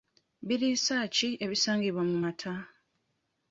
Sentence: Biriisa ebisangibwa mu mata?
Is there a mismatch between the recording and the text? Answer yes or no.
yes